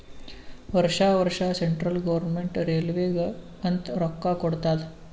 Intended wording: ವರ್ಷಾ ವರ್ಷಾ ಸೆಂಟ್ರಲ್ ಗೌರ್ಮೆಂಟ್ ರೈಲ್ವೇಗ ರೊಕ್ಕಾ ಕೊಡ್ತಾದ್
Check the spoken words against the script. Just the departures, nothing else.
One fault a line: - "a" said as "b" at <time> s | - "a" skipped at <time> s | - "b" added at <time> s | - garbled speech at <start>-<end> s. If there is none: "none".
- "ಅಂತ್" added at 3.6 s